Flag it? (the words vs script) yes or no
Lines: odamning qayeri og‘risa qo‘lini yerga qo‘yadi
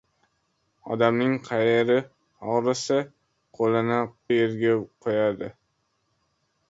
no